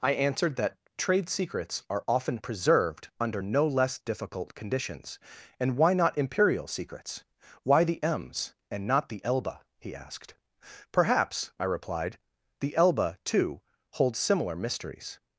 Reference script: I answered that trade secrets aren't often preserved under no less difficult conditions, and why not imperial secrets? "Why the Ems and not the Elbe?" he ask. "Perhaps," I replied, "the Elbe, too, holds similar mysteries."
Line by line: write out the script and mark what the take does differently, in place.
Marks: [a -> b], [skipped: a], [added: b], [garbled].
I answered that trade secrets [aren't -> are] often preserved under no less difficult conditions, and why not imperial secrets? "Why the Ems and not the Elbe?" he [ask. -> asked] "Perhaps," I replied, "the Elbe, too, holds similar mysteries."